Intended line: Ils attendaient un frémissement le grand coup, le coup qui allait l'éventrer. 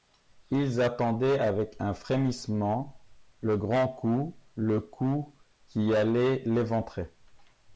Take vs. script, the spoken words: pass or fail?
fail